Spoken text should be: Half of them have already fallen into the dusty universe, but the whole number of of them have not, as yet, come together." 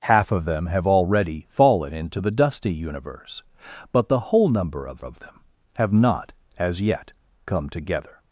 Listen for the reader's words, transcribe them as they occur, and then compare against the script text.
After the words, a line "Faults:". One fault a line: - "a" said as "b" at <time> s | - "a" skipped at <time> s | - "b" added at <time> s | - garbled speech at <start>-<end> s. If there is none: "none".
Half of them have already fallen into the dusty universe, but the whole number of of them have not, as yet, come together."
Faults:
none